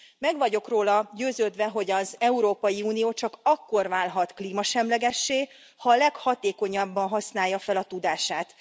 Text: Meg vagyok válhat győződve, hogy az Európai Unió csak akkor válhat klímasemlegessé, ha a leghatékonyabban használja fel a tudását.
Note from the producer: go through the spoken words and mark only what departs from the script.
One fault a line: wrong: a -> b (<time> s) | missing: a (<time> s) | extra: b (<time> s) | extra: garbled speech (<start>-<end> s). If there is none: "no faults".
wrong: válhat -> róla (0.7 s)